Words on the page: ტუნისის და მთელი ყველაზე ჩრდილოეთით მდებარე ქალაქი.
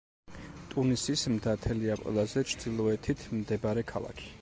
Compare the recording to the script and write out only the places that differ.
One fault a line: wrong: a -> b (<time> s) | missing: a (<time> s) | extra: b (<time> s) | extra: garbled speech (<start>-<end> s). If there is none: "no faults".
no faults